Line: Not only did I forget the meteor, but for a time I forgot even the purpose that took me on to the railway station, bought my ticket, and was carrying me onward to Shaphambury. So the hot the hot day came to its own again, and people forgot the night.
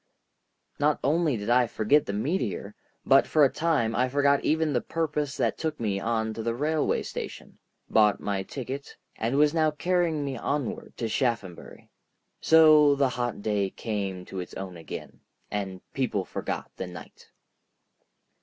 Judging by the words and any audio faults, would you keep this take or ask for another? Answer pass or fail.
fail